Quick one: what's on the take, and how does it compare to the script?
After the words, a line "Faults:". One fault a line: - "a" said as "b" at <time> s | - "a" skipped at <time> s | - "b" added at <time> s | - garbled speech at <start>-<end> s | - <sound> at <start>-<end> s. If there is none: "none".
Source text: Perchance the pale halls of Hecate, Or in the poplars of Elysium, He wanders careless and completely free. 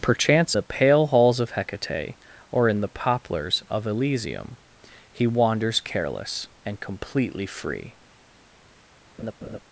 Perchance the pale halls of Hecate, Or in the poplars of Elysium, He wanders careless and completely free.
Faults:
- laugh at 9.2-9.6 s